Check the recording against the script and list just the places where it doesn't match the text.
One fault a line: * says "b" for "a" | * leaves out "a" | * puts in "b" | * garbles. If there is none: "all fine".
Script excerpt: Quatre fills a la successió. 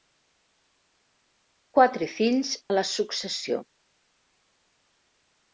all fine